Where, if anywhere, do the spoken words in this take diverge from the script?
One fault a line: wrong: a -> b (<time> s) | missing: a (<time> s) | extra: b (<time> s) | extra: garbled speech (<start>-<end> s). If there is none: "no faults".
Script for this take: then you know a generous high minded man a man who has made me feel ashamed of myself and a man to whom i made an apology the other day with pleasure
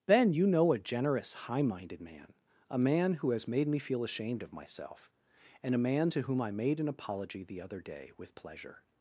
no faults